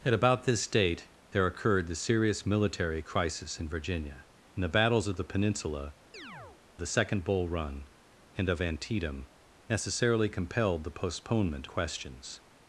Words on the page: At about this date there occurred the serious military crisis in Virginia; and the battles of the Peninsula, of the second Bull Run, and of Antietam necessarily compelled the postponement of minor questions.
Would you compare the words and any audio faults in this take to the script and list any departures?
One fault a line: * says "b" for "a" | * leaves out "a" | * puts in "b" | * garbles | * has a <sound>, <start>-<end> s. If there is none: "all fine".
* leaves out "of"
* has a chirp, 6.1-6.6 s
* leaves out "of minor"